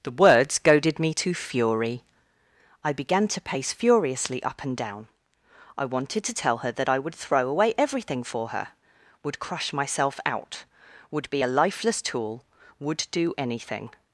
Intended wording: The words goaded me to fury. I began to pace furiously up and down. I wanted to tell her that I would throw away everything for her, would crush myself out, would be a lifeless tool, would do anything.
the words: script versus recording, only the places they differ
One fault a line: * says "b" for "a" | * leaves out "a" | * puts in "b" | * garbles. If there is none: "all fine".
all fine